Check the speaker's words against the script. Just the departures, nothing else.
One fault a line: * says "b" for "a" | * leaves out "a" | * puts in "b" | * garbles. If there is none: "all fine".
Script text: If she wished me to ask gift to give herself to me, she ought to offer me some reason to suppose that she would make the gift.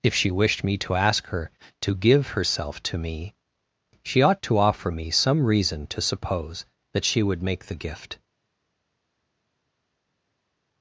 * says "her" for "gift"